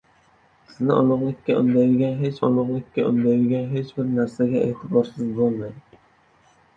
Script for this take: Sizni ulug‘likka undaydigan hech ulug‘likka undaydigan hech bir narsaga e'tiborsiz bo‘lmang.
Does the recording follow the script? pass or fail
pass